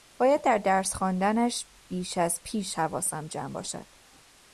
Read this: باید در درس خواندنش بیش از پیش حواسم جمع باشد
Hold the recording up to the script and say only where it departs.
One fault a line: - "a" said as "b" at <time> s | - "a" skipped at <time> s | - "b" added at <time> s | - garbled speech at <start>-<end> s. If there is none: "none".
none